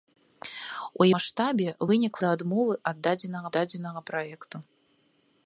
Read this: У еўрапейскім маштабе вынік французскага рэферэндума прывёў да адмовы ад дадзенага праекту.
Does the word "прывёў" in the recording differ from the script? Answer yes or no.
yes